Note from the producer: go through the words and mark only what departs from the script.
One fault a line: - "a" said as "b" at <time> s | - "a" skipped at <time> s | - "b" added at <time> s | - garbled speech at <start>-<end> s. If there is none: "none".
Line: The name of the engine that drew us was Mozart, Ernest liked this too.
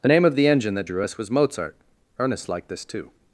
none